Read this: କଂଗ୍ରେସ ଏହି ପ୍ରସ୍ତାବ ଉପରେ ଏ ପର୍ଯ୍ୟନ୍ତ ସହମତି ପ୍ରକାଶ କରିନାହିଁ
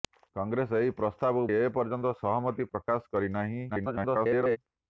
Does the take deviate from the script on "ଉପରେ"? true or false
true